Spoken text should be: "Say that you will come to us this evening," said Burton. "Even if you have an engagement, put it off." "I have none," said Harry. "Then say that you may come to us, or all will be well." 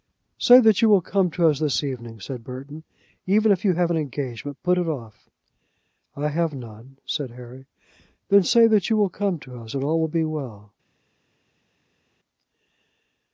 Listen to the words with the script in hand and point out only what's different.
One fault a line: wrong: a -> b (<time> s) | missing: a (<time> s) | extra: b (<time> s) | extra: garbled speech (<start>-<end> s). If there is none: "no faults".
wrong: may -> will (9.0 s)
wrong: or -> and (9.7 s)